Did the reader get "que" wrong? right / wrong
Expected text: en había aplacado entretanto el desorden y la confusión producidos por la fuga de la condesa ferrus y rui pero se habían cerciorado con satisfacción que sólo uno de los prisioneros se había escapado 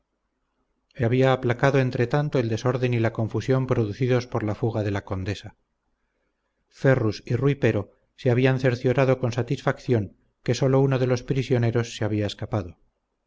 right